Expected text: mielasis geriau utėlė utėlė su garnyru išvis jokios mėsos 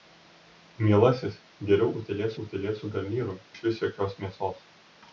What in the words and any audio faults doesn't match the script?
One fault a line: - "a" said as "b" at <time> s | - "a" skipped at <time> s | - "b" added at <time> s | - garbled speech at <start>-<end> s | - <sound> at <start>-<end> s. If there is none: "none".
none